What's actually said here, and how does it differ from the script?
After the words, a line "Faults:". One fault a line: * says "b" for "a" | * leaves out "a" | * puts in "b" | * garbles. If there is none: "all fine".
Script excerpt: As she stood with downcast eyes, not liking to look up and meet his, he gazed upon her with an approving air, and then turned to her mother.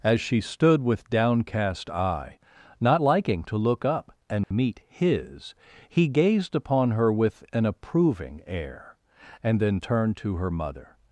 As she stood with downcast eye, not liking to look up and meet his, he gazed upon her with an approving air, and then turned to her mother.
Faults:
* says "eye" for "eyes"